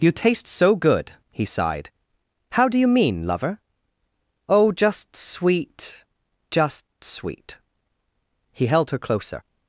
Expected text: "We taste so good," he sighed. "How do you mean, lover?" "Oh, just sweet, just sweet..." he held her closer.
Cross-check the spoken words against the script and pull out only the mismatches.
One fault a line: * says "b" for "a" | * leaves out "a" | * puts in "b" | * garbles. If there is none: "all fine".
* says "You" for "We"